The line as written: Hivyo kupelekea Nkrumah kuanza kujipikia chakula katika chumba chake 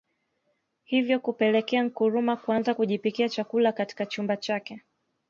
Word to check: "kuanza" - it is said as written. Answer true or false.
true